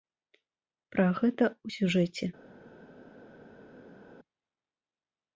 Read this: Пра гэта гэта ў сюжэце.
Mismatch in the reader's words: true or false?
true